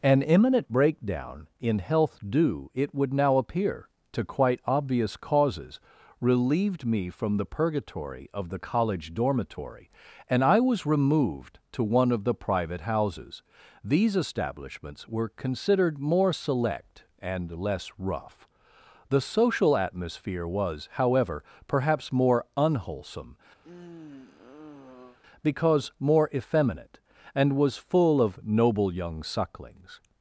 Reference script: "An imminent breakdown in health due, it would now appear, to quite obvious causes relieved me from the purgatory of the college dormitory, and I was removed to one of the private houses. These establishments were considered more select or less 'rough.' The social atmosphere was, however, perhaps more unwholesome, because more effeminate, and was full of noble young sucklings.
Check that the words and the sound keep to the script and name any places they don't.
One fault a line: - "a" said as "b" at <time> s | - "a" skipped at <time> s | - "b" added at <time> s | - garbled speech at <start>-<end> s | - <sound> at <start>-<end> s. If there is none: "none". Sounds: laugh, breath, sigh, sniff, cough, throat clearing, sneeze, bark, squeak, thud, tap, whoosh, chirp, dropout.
- "or" said as "and" at 17.2 s
- sigh at 23.6-25.2 s